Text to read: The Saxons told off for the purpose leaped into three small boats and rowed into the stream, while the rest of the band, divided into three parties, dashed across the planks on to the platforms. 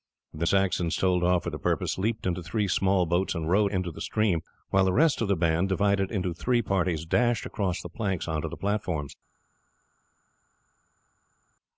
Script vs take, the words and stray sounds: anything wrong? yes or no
no